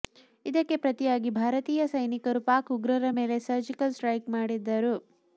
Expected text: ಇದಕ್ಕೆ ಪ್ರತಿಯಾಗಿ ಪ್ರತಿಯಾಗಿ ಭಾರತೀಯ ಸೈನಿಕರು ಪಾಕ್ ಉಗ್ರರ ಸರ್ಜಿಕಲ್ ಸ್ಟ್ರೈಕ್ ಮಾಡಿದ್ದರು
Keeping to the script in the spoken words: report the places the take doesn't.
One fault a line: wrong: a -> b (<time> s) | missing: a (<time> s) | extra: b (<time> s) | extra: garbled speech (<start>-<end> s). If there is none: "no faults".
missing: ಪ್ರತಿಯಾಗಿ (1.3 s)
extra: ಮೇಲೆ (3.2 s)